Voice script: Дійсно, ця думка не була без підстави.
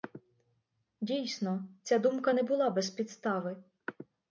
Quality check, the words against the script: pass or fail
pass